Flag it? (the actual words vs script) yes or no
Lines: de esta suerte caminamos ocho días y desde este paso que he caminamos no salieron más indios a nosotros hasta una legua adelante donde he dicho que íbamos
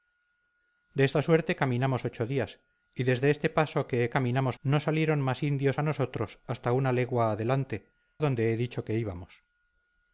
no